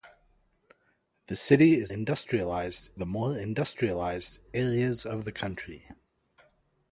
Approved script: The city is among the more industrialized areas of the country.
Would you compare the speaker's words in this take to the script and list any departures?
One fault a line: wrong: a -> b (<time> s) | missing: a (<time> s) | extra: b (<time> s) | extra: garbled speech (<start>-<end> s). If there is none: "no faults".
wrong: among -> industrialized (1.9 s)